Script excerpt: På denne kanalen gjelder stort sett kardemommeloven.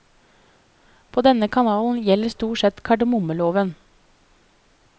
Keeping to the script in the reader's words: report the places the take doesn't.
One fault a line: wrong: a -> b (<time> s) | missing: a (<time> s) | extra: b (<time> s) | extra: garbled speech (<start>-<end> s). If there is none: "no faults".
no faults